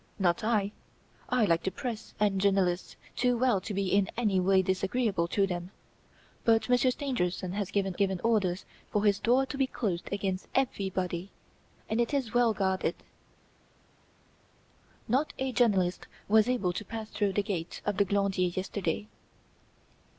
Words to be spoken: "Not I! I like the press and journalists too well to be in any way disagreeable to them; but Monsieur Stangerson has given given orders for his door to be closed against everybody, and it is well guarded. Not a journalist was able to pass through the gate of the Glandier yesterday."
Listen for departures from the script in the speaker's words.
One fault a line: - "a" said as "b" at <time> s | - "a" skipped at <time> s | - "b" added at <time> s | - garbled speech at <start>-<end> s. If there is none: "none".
none